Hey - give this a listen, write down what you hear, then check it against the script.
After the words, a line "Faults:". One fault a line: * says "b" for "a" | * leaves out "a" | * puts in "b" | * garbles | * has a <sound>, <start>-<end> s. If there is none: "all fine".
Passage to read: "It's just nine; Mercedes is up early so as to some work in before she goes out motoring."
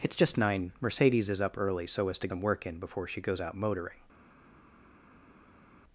"It's just nine; Mercedes is up early so as to some work in before she goes out motoring."
Faults:
all fine